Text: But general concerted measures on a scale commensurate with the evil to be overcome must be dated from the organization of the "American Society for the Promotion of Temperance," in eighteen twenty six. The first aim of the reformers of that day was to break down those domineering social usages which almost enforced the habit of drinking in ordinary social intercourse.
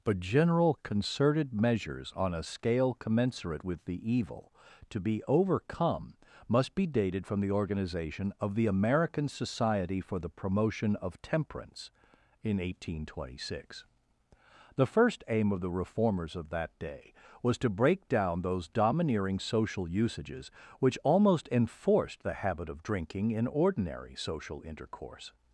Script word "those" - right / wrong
right